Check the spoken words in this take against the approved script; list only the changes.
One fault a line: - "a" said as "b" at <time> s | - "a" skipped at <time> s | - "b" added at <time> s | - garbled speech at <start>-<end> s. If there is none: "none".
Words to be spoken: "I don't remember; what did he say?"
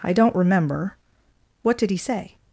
none